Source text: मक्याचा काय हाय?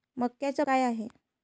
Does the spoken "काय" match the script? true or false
true